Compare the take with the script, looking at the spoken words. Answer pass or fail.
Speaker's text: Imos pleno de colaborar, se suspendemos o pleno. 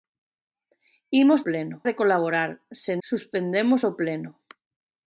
pass